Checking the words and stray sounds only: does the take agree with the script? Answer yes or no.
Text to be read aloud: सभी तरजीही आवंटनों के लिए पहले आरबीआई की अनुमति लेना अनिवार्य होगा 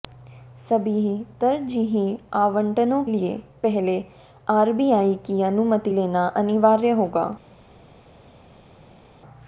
no